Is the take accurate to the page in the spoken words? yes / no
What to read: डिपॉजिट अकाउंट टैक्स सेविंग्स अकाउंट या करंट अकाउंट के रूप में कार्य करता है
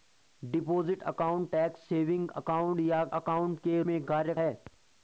no